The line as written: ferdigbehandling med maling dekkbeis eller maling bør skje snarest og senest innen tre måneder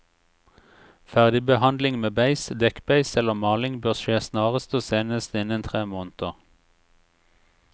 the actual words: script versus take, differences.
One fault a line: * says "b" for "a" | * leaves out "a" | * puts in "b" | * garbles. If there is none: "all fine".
* says "beis" for "maling"